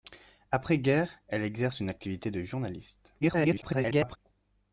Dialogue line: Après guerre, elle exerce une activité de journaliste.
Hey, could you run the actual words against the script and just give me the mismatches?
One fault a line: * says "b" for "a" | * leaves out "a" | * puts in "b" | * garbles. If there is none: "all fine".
* garbles